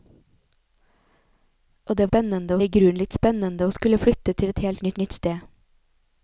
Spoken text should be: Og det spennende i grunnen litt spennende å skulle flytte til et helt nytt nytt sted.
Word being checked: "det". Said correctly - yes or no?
yes